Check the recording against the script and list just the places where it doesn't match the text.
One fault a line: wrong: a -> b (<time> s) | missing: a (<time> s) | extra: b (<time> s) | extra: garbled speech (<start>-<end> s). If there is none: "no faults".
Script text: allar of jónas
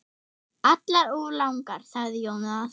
extra: langar sagði (1.4 s)